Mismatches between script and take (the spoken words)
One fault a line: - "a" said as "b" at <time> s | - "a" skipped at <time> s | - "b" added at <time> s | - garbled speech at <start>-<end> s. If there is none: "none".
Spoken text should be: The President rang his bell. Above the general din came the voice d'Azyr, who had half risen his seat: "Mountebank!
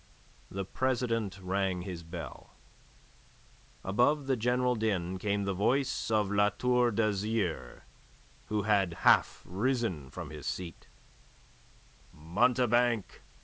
- "of La Tour" added at 6.1 s
- "from" added at 10.1 s